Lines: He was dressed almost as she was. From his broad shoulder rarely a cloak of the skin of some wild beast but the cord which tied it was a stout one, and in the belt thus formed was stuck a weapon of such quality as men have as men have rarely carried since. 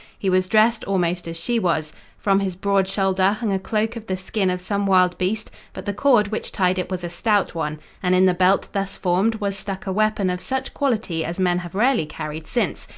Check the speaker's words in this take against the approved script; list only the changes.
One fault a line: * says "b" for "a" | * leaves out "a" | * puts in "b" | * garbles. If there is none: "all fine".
* says "hung" for "rarely"
* leaves out "as men have"